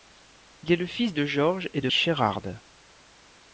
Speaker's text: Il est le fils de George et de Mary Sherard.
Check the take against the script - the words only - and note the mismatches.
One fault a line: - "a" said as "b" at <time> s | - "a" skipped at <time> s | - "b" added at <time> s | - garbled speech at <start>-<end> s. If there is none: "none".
- "Mary" skipped at 1.9 s